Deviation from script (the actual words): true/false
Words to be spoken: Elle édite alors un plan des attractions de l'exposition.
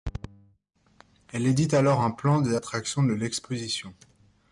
false